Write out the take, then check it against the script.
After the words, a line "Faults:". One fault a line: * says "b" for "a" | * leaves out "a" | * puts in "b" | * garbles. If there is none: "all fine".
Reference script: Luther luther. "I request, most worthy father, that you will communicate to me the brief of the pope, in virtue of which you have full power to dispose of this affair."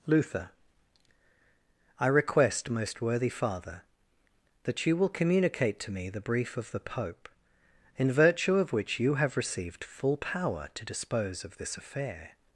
Luther. "I request, most worthy father, that you will communicate to me the brief of the pope, in virtue of which you have received full power to dispose of this affair."
Faults:
* leaves out "luther"
* puts in "received"